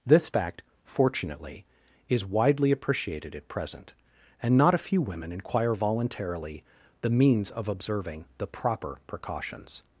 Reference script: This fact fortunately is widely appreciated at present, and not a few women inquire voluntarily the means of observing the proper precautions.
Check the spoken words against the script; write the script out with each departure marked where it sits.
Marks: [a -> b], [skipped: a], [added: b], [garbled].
This fact fortunately is widely appreciated at present, and not a few women inquire voluntarily the means of observing the proper precautions.